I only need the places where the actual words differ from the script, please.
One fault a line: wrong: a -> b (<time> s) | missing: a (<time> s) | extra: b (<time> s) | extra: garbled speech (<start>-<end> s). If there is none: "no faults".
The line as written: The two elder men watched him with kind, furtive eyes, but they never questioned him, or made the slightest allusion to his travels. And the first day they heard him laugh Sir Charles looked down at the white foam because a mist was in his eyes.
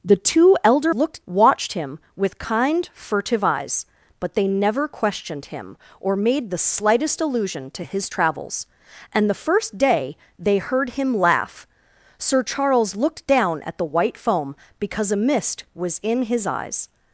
wrong: men -> looked (0.9 s)